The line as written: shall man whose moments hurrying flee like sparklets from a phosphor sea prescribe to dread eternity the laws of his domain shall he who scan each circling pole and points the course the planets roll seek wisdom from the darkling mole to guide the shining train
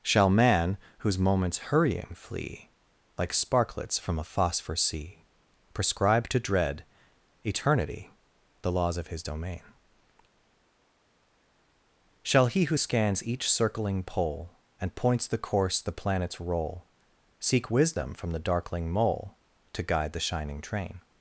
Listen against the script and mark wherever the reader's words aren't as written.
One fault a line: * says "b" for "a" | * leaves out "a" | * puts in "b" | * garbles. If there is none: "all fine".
* says "scans" for "scan"